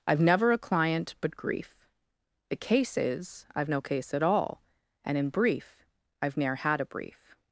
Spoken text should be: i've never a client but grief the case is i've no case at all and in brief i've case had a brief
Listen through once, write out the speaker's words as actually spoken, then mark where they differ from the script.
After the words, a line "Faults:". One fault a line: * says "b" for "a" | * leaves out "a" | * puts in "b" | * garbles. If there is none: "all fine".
i've never a client but grief the case is i've no case at all and in brief i've ne'er had a brief
Faults:
* says "ne'er" for "case"